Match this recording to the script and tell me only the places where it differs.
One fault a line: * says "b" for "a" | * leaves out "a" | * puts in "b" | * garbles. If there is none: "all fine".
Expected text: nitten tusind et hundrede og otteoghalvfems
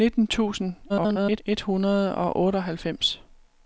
* garbles